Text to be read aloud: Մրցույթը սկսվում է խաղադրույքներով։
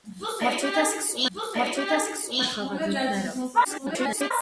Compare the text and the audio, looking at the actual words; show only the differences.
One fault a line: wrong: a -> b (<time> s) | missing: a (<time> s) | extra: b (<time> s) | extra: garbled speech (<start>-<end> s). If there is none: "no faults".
extra: մրցույթը սկսվում (1.4 s)
extra: garbled speech (3.6-4.3 s)